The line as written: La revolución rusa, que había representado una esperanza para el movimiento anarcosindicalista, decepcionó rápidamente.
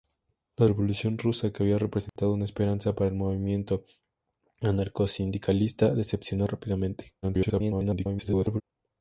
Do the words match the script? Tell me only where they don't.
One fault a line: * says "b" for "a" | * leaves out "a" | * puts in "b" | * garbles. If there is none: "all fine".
* garbles